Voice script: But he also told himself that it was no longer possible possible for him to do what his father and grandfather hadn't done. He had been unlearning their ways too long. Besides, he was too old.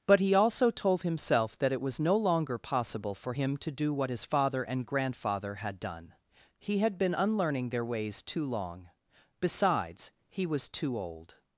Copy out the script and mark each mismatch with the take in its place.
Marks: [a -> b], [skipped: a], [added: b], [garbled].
But he also told himself that it was no longer possible [skipped: possible] for him to do what his father and grandfather [hadn't -> had] done. He had been unlearning their ways too long. Besides, he was too old.